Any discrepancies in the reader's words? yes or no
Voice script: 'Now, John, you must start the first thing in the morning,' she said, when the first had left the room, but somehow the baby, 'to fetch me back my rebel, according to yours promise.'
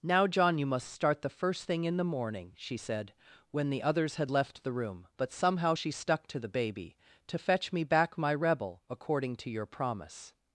yes